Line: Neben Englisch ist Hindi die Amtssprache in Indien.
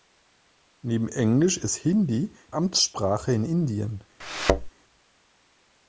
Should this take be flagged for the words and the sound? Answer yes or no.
yes